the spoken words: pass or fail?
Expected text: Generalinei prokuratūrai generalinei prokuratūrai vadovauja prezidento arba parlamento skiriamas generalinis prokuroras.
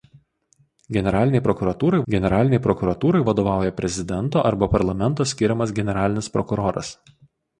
pass